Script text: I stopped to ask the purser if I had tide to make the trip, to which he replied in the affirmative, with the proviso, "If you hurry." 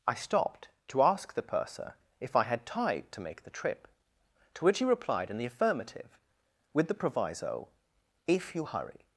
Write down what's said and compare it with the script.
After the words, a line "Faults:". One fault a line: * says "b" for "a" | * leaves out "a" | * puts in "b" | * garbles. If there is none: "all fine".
I stopped to ask the purser if I had tide to make the trip, to which he replied in the affirmative, with the proviso, "If you hurry."
Faults:
all fine